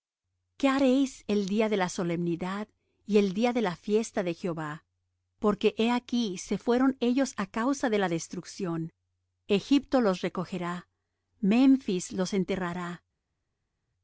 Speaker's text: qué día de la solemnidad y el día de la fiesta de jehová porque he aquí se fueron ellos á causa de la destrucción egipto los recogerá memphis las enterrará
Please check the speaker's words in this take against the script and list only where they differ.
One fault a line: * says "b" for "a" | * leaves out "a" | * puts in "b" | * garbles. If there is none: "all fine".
* puts in "haréis el"
* says "los" for "las"